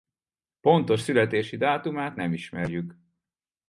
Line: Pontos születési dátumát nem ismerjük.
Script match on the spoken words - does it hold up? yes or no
yes